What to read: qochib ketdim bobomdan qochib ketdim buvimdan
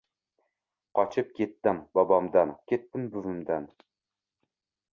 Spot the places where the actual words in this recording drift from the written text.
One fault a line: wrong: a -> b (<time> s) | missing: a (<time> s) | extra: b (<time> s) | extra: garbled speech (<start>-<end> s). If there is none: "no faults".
missing: qochib (2.5 s)